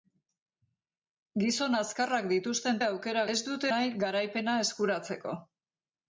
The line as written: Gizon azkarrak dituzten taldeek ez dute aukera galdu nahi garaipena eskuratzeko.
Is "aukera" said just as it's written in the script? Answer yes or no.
no